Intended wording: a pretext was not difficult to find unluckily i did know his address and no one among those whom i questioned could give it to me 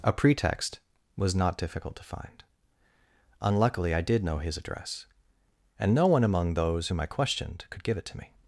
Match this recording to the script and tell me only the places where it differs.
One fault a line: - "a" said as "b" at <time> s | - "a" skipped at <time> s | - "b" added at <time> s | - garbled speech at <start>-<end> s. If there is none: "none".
none